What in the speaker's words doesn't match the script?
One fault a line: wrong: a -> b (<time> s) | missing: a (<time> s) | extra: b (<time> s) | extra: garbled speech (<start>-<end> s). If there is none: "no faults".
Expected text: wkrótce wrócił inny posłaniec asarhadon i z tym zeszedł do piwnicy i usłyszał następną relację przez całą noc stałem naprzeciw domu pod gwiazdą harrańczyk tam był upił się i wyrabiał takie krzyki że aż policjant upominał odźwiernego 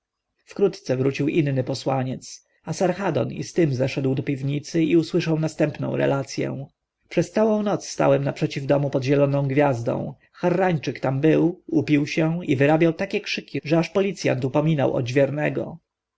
extra: zieloną (9.0 s)